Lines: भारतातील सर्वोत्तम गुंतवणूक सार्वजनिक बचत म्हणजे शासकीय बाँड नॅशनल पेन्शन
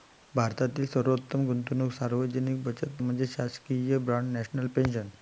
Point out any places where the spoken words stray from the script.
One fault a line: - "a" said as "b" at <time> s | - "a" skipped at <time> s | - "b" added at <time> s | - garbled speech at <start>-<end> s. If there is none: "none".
none